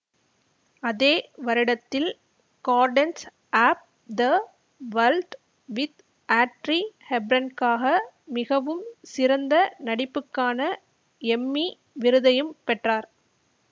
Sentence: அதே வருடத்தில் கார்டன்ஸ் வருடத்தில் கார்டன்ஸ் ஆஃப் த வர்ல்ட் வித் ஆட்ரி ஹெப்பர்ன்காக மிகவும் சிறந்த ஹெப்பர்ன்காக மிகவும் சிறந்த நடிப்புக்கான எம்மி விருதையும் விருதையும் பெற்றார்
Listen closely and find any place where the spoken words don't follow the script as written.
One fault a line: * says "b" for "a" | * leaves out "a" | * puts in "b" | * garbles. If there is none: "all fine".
* leaves out "வருடத்தில் கார்டன்ஸ்"
* leaves out "ஹெப்பர்ன்காக மிகவும் சிறந்த"
* leaves out "விருதையும்"